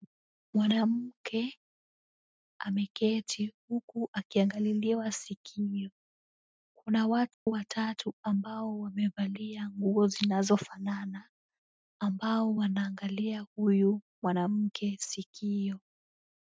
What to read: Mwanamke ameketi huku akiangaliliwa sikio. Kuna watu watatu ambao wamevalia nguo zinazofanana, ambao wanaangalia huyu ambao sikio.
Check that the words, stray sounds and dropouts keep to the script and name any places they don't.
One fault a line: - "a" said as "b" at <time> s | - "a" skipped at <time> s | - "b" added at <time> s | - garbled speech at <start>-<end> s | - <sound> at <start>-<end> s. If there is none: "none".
- dropout at 7.3-7.5 s
- "ambao" said as "mwanamke" at 14.2 s